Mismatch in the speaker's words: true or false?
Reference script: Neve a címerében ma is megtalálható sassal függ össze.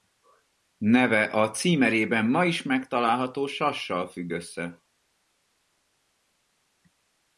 false